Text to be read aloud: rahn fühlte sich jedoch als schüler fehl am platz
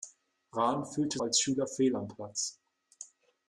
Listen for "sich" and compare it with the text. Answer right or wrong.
wrong